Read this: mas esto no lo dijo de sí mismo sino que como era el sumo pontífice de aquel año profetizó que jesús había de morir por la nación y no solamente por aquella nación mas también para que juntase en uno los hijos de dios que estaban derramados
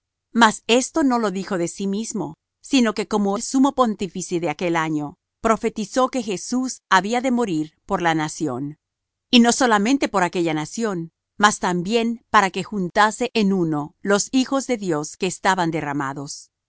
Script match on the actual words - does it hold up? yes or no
no